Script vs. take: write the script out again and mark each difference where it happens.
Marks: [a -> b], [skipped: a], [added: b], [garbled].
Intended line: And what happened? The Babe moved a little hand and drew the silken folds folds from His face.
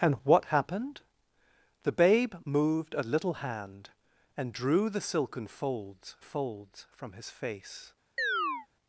And what happened? The Babe moved a little hand and drew the silken folds folds from His face.